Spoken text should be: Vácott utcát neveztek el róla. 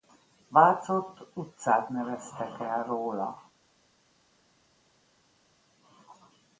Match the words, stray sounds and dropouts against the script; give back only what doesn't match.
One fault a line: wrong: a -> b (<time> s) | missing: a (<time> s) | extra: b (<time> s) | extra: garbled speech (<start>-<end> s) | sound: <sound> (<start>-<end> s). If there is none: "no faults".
no faults